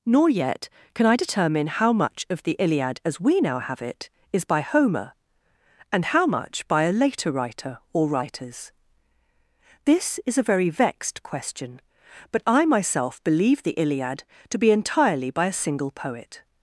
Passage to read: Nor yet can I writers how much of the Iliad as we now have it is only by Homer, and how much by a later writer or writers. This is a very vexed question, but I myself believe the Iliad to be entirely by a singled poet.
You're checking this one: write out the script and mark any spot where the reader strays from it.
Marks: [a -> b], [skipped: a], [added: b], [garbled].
Nor yet can I [writers -> determine] how much of the Iliad as we now have it is [skipped: only] by Homer, and how much by a later writer or writers. This is a very vexed question, but I myself believe the Iliad to be entirely by a [singled -> single] poet.